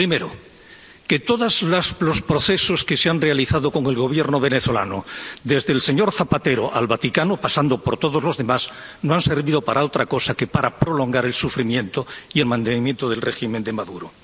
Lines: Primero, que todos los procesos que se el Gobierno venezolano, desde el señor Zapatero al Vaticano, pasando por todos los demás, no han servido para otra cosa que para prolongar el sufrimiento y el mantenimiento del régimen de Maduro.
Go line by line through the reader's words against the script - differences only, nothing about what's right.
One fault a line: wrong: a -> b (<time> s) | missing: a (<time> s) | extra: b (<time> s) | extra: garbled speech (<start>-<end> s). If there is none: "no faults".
extra: han realizado con (3.1 s)